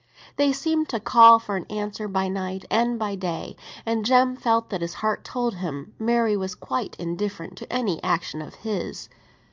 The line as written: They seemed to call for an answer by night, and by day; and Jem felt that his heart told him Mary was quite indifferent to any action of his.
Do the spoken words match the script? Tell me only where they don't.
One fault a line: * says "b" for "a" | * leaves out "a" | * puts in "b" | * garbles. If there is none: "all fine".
all fine